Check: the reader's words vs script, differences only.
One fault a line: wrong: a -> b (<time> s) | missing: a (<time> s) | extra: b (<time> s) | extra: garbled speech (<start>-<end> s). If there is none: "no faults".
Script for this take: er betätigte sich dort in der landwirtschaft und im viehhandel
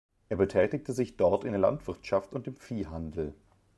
no faults